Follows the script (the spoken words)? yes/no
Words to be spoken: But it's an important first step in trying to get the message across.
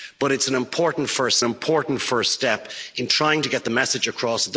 no